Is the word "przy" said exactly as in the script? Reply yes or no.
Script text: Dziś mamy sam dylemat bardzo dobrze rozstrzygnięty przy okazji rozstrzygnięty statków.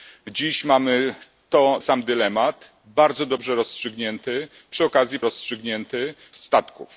yes